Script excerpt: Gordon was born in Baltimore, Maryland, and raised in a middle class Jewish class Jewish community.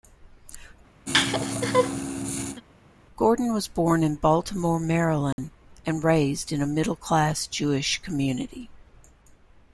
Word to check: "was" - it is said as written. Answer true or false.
true